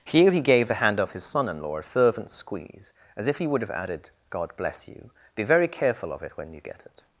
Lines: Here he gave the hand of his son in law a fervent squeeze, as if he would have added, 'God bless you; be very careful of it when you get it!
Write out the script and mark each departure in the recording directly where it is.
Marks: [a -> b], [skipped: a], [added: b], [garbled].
Here he gave the hand of his son in law a fervent squeeze, as if he would have added, 'God bless you; be very careful of it when you get it!